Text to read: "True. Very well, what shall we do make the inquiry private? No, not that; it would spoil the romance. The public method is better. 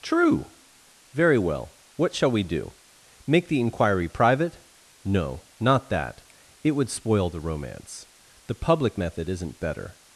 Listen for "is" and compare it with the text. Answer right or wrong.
wrong